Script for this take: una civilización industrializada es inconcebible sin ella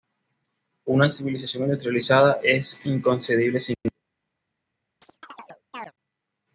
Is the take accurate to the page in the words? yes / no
yes